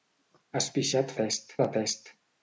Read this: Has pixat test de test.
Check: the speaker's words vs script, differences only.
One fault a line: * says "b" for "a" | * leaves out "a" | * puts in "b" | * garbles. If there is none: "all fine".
all fine